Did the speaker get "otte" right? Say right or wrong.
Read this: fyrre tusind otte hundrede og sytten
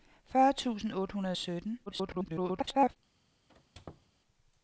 right